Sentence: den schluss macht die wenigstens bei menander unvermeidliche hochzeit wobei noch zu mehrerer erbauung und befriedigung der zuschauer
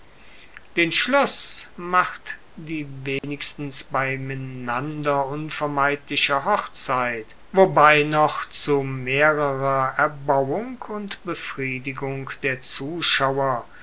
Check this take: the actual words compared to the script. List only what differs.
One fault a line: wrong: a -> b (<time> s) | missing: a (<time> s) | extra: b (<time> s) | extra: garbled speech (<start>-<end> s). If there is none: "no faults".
no faults